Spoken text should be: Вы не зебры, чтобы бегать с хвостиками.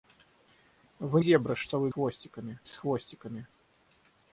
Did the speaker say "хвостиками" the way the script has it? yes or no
yes